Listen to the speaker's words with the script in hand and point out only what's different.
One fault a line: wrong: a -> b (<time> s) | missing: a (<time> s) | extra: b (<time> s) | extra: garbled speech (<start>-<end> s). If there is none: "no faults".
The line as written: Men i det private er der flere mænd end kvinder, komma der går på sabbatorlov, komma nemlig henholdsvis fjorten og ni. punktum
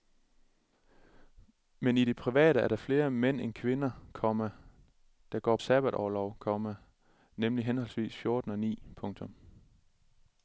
missing: på (5.6 s)